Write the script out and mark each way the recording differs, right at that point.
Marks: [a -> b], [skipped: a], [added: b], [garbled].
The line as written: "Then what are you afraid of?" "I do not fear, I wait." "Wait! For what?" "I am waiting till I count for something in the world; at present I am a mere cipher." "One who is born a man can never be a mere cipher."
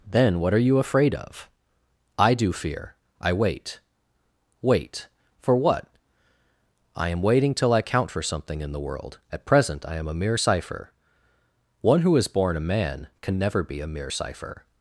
"Then what are you afraid of?" "I do [skipped: not] fear, I wait." "Wait! For what?" "I am waiting till I count for something in the world; at present I am a mere cipher." "One who is born a man can never be a mere cipher."